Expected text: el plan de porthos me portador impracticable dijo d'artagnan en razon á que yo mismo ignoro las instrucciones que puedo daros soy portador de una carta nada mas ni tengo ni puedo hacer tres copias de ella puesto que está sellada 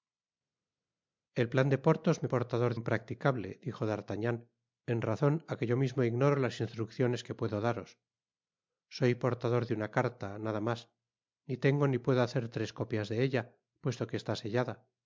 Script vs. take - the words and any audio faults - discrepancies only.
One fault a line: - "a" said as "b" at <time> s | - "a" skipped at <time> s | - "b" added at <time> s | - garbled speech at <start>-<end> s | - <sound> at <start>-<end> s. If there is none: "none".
none